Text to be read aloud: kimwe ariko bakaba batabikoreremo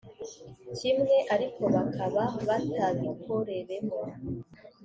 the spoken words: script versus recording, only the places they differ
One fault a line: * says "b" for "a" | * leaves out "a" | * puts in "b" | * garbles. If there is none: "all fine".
all fine